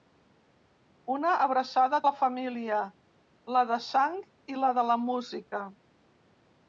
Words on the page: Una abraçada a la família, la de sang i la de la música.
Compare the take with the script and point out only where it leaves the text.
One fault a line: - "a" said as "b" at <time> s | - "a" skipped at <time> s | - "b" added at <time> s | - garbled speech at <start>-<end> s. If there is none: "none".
none